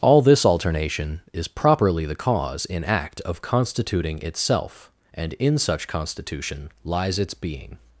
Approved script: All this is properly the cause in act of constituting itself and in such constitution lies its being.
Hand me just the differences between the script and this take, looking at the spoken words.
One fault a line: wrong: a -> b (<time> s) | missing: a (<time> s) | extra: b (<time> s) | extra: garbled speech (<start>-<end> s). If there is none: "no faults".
extra: alternation (0.5 s)